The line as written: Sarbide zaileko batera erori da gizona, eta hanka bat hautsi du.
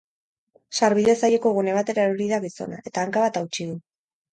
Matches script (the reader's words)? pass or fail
fail